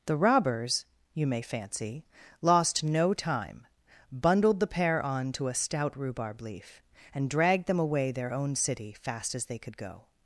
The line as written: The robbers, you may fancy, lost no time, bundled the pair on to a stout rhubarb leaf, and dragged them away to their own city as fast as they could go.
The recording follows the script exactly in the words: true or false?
false